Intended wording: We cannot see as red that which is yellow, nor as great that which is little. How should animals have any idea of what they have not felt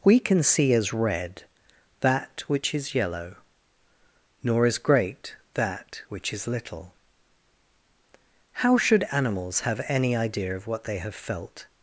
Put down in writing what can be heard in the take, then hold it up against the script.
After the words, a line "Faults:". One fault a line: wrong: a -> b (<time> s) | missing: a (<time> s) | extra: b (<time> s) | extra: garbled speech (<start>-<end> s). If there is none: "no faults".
We can see as red that which is yellow, nor as great that which is little. How should animals have any idea of what they have felt
Faults:
wrong: cannot -> can (0.2 s)
missing: not (11.1 s)